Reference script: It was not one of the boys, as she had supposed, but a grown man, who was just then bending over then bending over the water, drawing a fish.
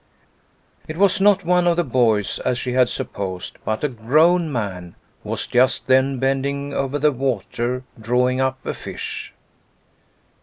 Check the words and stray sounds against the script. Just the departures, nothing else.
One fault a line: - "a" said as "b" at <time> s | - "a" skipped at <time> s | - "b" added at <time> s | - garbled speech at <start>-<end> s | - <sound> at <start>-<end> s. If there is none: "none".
- "then bending over" skipped at 7.0 s
- "up" added at 8.4 s